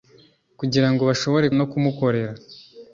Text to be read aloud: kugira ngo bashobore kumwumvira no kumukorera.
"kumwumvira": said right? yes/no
no